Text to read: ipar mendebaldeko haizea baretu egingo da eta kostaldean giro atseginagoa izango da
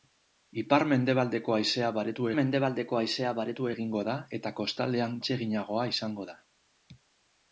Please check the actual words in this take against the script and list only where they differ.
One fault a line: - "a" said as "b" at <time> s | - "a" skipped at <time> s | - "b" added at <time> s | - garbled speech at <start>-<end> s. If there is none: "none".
- "mendebaldeko haizea baretu" added at 2.4 s
- "giro" skipped at 5.2 s